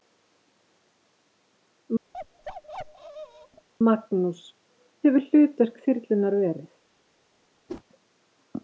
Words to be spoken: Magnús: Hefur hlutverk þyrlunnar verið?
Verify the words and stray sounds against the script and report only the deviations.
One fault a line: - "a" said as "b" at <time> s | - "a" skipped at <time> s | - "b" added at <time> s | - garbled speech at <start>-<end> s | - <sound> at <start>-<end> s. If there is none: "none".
- bark at 2.1-3.7 s
- whoosh at 7.7-7.8 s